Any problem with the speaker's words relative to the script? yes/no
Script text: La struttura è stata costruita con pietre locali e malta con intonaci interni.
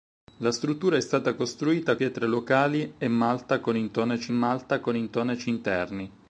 yes